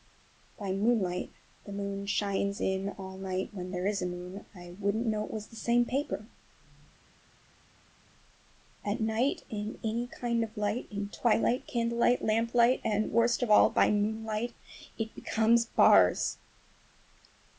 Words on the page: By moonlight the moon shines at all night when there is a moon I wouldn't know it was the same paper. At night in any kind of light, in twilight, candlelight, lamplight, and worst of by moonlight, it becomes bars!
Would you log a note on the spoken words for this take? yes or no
yes